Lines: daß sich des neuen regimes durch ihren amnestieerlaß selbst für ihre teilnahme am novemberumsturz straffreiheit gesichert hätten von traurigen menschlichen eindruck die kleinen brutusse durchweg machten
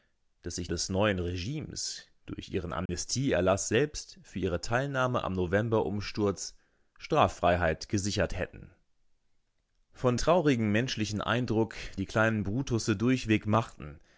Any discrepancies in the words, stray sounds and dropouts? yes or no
yes